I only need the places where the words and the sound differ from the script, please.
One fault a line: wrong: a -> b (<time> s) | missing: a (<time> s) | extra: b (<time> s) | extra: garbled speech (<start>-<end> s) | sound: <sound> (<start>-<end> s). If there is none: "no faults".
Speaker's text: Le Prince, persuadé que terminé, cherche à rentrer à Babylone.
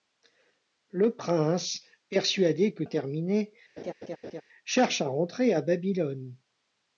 sound: laugh (3.8-4.4 s)